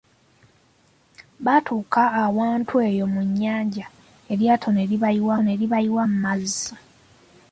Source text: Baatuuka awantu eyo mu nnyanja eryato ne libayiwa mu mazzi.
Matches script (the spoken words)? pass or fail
fail